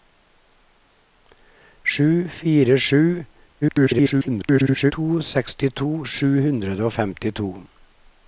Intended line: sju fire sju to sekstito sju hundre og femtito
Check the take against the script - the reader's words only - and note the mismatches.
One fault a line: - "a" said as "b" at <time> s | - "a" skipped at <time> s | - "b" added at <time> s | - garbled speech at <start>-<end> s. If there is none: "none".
- garbled speech at 3.6-4.9 s